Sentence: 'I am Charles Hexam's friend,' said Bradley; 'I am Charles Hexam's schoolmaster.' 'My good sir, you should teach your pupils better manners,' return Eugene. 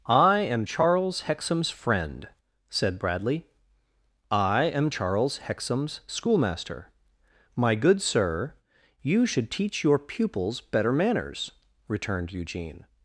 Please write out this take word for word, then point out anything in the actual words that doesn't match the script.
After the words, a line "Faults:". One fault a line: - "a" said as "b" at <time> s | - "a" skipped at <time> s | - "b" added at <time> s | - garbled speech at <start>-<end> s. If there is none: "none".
'I am Charles Hexam's friend,' said Bradley; 'I am Charles Hexam's schoolmaster.' 'My good sir, you should teach your pupils better manners,' returned Eugene.
Faults:
- "return" said as "returned" at 11.9 s